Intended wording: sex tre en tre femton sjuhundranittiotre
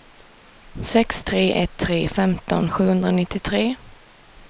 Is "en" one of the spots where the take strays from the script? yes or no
yes